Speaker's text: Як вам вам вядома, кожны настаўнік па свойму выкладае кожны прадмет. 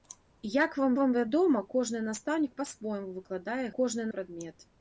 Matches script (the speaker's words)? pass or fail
pass